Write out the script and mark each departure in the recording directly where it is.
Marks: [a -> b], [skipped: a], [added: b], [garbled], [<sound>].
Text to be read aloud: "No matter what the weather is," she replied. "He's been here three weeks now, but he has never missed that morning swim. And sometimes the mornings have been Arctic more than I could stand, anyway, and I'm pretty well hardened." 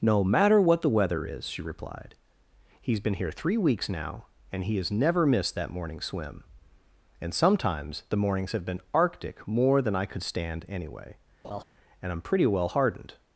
"No matter what the weather is," she replied. "He's been here three weeks now, [but -> and] he has never missed that morning swim. And sometimes the mornings have been Arctic more than I could stand, anyway, [laugh] and I'm pretty well hardened."